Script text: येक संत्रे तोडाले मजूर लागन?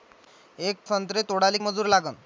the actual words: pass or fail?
pass